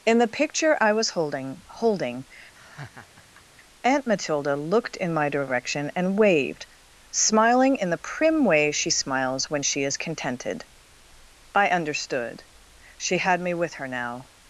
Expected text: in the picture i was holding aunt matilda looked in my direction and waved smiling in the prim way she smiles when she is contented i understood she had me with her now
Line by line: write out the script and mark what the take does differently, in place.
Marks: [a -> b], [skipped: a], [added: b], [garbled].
in the picture i was holding [added: holding] aunt matilda looked in my direction and waved smiling in the prim way she smiles when she is contented i understood she had me with her now